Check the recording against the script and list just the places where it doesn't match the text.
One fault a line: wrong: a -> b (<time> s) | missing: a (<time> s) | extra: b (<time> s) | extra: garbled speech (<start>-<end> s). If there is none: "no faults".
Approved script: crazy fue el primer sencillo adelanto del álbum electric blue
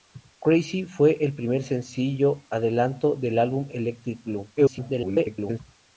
extra: garbled speech (4.6-5.6 s)